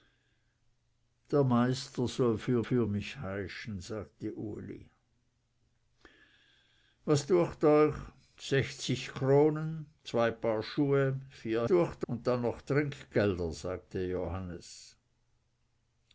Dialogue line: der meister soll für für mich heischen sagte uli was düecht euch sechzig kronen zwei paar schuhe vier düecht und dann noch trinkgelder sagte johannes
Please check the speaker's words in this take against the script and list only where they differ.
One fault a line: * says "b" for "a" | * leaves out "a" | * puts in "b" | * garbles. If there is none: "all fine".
all fine